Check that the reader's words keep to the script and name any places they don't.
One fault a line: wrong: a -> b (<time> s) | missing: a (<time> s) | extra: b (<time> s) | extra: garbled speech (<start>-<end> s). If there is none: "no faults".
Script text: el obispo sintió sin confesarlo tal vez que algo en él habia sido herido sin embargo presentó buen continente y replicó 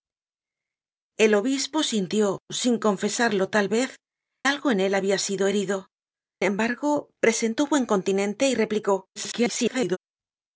missing: que (4.0 s)
missing: sin (5.9 s)
extra: garbled speech (9.2-10.0 s)